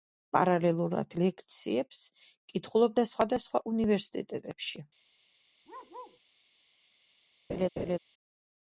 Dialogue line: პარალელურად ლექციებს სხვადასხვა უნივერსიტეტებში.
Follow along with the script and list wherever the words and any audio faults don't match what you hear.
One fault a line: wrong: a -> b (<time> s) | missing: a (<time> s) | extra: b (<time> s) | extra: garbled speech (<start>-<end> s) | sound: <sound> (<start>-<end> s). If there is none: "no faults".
extra: კითხულობდა (2.5 s)
sound: bark (5.6-6.2 s)
sound: laugh (7.5-8.0 s)